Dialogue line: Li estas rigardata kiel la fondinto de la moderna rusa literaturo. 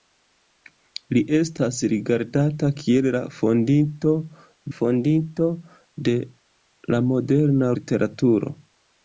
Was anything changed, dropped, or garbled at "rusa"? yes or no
yes